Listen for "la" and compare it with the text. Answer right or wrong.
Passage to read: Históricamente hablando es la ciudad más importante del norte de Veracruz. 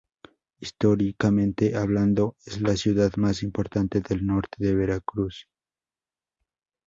right